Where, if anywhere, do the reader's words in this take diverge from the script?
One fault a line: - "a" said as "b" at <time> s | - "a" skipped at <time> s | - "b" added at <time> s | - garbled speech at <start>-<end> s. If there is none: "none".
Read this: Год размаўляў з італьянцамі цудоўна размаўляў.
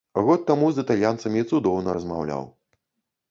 - "размаўляў" said as "таму" at 0.5 s